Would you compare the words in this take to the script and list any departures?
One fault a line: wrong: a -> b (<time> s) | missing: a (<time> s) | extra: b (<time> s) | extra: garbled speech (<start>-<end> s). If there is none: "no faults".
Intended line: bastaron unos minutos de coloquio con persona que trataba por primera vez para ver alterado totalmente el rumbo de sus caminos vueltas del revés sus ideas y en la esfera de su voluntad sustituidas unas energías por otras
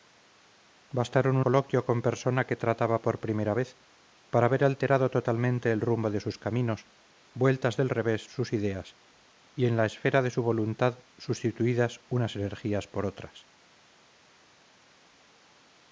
missing: unos minutos de (1.4 s)